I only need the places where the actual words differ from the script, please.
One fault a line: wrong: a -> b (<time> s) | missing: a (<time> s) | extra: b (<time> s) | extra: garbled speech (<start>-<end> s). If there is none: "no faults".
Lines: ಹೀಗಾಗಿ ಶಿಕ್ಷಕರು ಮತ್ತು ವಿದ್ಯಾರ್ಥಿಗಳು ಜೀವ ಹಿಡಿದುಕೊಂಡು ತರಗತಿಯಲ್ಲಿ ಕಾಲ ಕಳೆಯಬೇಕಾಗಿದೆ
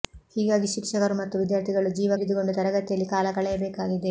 no faults